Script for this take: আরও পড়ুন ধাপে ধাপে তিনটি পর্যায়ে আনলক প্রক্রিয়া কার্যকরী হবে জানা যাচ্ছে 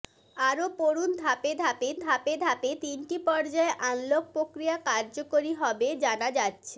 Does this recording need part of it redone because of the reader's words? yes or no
yes